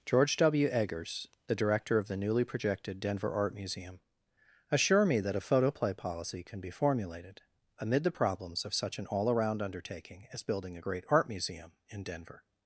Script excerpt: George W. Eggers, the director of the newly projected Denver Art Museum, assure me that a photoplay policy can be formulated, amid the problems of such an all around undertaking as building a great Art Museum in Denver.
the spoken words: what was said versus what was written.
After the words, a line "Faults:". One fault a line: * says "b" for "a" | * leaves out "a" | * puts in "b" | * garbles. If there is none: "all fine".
George W. Eggers, the director of the newly projected Denver Art Museum, assure me that a photoplay policy can be formulated, amid the problems of such an all around undertaking as building a great Art Museum in Denver.
Faults:
all fine